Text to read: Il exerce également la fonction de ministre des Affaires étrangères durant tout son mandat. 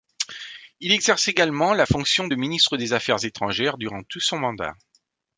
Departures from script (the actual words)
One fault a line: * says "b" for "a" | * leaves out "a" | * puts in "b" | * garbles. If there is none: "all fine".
all fine